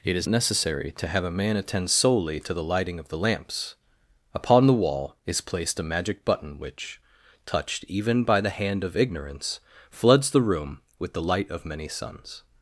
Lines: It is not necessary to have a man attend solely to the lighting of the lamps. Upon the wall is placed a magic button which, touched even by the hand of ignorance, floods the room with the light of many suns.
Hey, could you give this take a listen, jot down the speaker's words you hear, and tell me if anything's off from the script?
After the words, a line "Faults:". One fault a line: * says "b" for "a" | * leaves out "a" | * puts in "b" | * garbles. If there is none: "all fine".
It is necessary to have a man attend solely to the lighting of the lamps. Upon the wall is placed a magic button which, touched even by the hand of ignorance, floods the room with the light of many suns.
Faults:
* leaves out "not"